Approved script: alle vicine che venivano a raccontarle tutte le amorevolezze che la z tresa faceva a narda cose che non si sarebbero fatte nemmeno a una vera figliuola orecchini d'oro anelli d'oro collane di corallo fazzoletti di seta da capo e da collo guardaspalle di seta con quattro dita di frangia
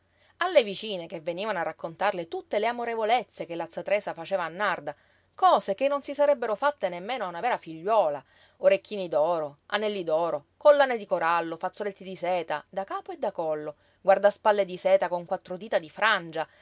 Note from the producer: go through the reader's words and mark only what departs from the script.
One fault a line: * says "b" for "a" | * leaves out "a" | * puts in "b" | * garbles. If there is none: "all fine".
all fine